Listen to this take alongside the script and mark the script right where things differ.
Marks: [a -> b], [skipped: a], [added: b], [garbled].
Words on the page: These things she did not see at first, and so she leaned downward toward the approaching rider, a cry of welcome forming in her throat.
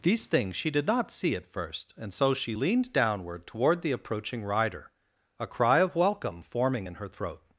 These things she did not see at first, and so she leaned downward toward the approaching rider, a cry of welcome forming in her throat.